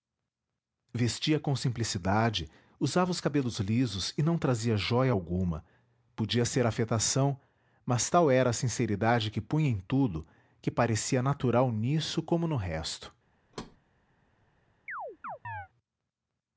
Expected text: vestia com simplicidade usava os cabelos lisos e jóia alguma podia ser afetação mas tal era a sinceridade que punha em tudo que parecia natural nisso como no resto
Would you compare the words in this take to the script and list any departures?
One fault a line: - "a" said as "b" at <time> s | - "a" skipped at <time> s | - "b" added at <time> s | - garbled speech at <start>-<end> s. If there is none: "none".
- "não trazia" added at 4.2 s